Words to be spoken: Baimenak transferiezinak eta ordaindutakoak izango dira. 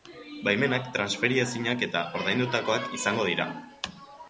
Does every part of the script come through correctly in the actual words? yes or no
yes